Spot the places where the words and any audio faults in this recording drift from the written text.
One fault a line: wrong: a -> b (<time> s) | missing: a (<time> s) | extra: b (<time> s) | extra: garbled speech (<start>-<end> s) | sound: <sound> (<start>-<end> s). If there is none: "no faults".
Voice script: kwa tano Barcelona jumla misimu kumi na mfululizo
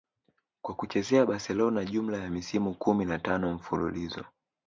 wrong: tano -> kuchezea (0.8 s)
extra: ya (2.2 s)
extra: tano (3.2 s)